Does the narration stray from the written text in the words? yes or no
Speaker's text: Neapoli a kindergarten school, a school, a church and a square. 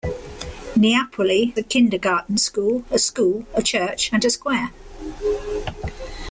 no